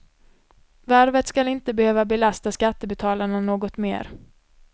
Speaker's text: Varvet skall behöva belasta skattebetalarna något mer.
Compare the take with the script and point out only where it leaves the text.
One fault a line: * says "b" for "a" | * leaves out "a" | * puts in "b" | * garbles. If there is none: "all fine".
* puts in "inte"